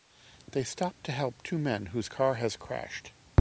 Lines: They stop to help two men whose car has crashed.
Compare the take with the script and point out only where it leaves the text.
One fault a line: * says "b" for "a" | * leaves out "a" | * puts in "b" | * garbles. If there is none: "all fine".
all fine